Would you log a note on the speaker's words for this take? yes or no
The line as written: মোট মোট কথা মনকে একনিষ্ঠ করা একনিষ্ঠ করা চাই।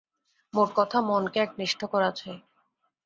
yes